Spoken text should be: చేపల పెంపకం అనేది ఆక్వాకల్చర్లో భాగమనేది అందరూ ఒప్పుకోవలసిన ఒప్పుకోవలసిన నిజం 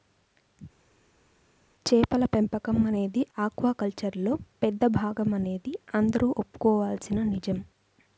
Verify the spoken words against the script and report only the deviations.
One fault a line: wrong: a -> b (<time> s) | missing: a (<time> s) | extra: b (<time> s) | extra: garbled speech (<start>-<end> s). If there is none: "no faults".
extra: పెద్ద (4.6 s)
missing: ఒప్పుకోవలసిన (7.2 s)